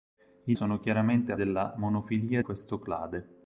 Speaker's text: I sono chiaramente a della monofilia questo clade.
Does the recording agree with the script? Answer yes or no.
yes